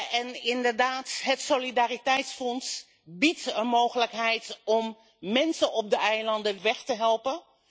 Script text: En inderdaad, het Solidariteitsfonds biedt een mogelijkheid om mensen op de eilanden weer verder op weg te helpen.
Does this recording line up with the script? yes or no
no